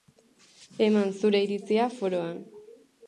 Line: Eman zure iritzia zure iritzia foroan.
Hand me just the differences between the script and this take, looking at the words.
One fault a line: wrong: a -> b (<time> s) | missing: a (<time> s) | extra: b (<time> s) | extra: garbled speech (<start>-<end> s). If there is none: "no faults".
missing: zure iritzia (1.9 s)